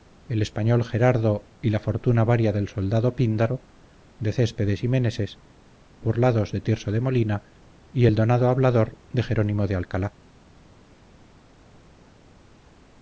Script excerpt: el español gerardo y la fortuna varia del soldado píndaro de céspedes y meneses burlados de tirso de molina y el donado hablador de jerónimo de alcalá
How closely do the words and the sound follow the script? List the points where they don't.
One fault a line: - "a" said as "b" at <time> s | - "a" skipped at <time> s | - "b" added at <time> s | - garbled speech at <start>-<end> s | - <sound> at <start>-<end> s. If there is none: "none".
none